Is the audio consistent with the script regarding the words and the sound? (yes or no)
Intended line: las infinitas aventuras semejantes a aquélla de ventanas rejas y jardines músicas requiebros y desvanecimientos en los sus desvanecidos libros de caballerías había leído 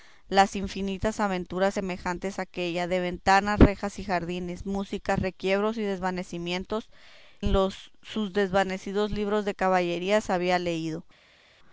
yes